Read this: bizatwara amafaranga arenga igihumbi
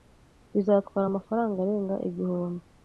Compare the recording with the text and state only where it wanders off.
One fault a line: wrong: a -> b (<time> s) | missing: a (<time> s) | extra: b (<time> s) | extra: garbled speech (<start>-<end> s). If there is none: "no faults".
no faults